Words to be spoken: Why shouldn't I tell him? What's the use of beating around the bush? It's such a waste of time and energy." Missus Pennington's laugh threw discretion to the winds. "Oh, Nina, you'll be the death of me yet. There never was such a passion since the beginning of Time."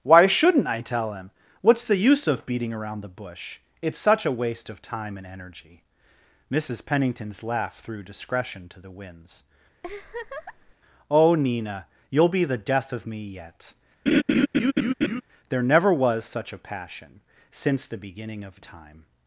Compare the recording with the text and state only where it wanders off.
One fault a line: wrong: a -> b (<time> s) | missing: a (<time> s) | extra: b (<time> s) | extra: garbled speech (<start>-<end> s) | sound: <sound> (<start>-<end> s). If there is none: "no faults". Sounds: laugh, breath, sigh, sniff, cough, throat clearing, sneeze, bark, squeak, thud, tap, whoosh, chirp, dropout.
sound: laugh (9.8-10.7 s)
sound: laugh (14.1-15.2 s)